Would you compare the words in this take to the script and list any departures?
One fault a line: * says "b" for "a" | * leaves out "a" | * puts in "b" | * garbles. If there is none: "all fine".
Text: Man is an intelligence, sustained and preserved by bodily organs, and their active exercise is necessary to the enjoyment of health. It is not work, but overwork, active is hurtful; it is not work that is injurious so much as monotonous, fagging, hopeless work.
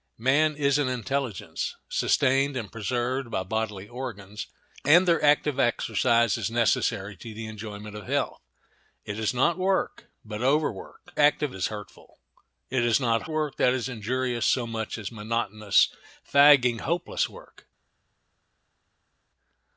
all fine